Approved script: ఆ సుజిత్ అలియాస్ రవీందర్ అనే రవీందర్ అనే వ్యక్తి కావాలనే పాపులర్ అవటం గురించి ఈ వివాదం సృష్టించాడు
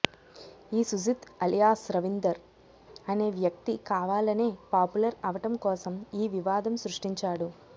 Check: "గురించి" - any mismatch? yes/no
yes